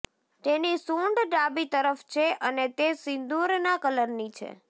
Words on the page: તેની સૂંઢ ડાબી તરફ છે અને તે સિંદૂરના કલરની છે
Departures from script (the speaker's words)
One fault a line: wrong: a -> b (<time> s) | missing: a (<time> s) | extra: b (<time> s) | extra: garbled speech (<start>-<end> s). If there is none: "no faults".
no faults